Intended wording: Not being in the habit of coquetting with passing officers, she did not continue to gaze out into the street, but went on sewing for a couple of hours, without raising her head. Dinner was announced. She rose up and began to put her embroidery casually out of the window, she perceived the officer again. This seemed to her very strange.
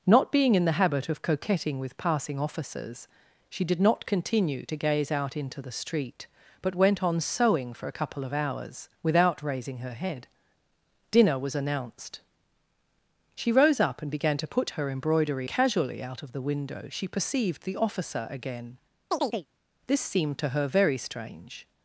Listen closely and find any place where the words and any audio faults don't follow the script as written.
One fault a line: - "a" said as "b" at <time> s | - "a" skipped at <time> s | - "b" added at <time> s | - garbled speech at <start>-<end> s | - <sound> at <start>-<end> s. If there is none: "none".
- chirp at 19.1-19.5 s